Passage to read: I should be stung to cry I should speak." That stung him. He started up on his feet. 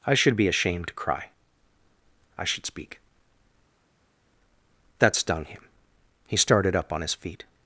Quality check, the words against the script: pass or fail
fail